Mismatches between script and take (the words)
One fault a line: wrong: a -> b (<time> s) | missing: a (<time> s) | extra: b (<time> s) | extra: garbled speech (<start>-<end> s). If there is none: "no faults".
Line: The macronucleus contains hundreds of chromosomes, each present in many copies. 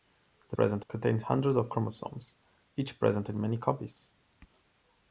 wrong: macronucleus -> present (0.5 s)